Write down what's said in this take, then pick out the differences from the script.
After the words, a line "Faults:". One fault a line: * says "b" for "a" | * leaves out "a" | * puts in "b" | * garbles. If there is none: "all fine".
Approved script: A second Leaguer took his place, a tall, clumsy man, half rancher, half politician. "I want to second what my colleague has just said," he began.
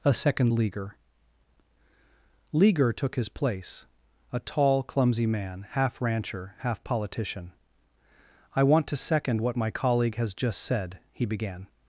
A second Leaguer Leaguer took his place, a tall, clumsy man, half rancher, half politician. "I want to second what my colleague has just said," he began.
Faults:
* puts in "Leaguer"